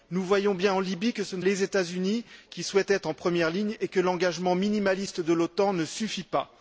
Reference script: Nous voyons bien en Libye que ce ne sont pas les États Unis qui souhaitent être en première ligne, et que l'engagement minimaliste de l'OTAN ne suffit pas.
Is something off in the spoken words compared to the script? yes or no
yes